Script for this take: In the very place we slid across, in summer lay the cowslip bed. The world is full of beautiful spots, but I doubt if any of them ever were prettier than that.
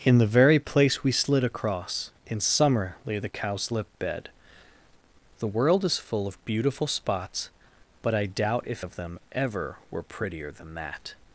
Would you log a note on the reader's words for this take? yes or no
yes